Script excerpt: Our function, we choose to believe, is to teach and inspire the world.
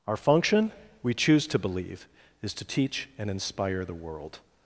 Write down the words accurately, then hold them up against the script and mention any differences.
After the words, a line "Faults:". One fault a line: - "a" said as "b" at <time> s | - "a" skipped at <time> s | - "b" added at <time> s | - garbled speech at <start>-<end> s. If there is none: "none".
Our function, we choose to believe, is to teach and inspire the world.
Faults:
none